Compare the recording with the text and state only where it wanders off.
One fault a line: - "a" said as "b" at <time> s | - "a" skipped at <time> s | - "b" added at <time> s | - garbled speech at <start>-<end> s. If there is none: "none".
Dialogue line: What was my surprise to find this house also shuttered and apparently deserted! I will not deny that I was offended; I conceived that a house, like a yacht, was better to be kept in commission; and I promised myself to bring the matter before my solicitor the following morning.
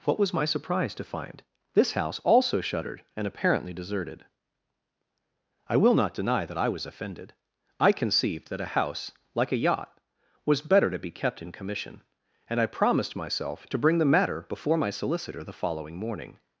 none